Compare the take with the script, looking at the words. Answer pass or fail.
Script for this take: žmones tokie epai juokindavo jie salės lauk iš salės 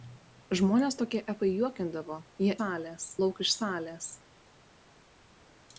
pass